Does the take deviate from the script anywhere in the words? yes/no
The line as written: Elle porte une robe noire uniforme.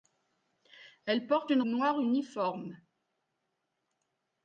yes